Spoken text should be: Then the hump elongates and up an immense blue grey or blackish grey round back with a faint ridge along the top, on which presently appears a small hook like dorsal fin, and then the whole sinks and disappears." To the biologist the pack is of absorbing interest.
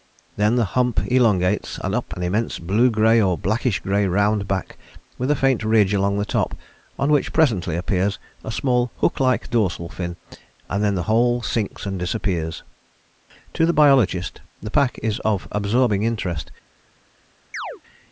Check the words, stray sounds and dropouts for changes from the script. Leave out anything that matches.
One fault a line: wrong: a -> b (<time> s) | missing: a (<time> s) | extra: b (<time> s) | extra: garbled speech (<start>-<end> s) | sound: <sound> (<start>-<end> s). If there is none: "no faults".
sound: chirp (17.5-17.8 s)